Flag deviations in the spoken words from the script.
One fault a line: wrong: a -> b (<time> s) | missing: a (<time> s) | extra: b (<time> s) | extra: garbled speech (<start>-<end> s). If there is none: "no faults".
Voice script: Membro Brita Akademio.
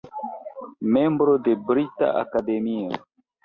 extra: de (1.4 s)